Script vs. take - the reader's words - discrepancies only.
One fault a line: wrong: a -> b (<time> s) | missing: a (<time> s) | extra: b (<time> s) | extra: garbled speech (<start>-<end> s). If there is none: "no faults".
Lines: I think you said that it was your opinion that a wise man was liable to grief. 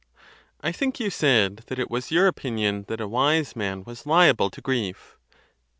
no faults